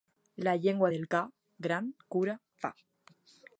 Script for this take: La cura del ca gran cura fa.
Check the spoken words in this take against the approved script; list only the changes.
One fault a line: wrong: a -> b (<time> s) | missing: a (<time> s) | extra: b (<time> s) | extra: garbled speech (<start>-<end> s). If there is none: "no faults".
wrong: cura -> llengua (0.6 s)